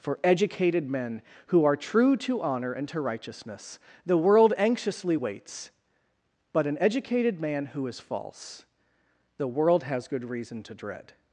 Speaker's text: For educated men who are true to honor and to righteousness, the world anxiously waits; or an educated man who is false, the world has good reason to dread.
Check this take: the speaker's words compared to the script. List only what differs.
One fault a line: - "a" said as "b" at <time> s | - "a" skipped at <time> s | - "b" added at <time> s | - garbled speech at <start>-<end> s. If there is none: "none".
- "or" said as "but" at 6.5 s